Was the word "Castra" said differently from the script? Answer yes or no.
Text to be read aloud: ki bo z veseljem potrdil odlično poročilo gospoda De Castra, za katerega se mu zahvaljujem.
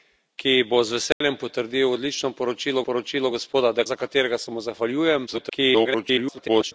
yes